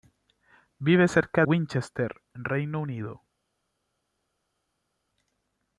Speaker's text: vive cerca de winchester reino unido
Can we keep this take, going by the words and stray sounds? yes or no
no